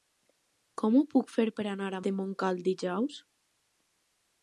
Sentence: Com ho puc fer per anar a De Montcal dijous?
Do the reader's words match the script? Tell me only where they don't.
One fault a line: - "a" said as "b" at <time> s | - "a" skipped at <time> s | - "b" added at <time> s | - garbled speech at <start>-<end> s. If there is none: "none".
none